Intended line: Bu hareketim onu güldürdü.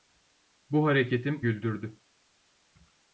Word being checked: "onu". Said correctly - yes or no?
no